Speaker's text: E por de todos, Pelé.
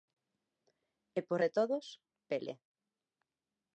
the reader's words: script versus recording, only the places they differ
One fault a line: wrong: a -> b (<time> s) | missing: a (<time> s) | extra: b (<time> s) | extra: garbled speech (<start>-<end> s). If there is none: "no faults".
no faults